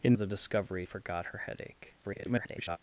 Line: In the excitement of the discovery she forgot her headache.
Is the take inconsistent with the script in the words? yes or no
yes